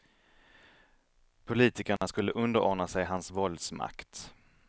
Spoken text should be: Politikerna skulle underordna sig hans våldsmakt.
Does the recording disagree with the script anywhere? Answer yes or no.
no